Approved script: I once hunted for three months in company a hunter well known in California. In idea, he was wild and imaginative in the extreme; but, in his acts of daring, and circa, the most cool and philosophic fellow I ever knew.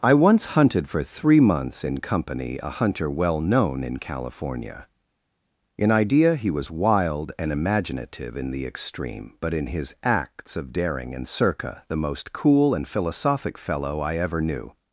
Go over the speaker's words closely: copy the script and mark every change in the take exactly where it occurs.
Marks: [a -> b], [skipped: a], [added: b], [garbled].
I once hunted for three months in company a hunter well known in California. In idea, he was wild and imaginative in the extreme; but, in his acts of daring, and circa, the most cool and philosophic fellow I ever knew.